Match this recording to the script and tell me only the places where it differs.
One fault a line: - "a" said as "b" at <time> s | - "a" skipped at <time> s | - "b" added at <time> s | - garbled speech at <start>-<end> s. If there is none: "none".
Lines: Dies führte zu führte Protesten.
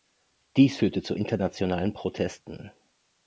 - "führte" said as "internationalen" at 1.1 s